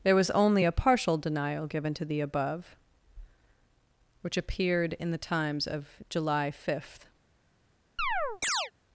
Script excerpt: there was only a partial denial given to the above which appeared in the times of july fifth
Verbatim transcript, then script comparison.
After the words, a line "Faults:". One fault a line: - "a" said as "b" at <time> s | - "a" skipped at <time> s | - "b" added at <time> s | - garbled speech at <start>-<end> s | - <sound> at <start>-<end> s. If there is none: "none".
there was only a partial denial given to the above which appeared in the times of july fifth
Faults:
- chirp at 8.0-8.7 s